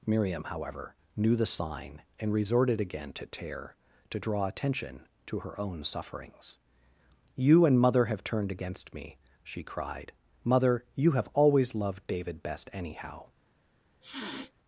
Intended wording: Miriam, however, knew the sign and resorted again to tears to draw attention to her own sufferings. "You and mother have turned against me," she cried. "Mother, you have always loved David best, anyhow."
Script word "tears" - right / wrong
wrong